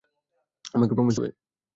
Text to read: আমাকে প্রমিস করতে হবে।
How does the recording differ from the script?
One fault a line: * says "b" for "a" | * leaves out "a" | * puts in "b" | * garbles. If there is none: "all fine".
* leaves out "করতে"